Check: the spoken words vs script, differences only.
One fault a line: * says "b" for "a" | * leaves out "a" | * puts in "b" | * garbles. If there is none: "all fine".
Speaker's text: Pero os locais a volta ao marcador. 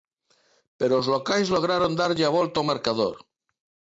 * puts in "lograron darlle"